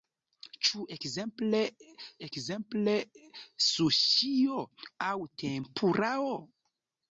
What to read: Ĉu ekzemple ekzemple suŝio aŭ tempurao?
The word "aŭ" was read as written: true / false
true